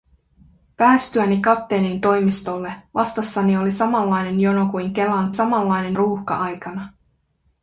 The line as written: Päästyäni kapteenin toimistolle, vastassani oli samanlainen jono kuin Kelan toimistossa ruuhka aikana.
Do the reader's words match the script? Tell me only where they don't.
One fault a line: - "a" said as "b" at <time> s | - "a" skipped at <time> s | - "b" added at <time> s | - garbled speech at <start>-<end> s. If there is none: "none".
- "toimistossa" said as "samanlainen" at 5.3 s